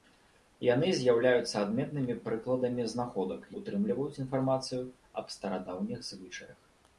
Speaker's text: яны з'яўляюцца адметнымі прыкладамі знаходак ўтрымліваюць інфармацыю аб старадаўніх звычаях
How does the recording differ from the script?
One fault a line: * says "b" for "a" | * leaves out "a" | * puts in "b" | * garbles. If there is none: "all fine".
all fine